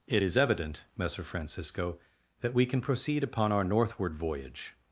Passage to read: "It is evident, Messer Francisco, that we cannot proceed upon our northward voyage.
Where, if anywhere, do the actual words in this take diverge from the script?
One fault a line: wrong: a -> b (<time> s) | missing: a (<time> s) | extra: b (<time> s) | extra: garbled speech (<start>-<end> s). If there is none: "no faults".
wrong: cannot -> can (2.7 s)